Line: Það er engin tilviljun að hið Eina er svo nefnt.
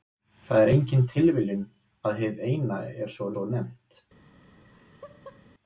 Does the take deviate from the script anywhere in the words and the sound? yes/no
yes